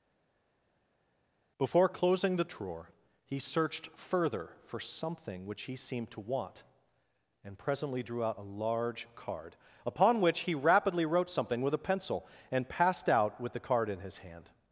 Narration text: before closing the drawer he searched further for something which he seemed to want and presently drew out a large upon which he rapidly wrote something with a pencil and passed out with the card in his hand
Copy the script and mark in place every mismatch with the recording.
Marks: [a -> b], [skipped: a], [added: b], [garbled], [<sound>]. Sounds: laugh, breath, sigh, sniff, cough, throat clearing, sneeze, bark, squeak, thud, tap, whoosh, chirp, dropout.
before closing the drawer he searched further for something which he seemed to want and presently drew out a large [added: card] upon which he rapidly wrote something with a pencil and passed out with the card in his hand